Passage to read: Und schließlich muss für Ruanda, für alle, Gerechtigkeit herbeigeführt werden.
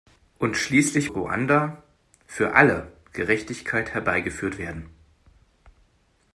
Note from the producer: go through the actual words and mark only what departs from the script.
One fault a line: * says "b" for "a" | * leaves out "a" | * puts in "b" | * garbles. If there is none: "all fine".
* leaves out "muss für"